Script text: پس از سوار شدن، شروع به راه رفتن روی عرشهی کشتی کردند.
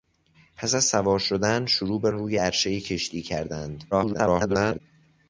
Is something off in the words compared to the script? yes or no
yes